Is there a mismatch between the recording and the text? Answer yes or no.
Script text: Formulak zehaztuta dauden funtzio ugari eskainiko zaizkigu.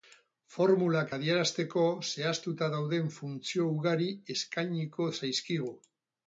yes